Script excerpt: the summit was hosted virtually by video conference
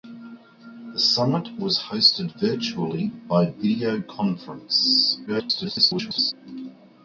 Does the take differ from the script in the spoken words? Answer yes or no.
yes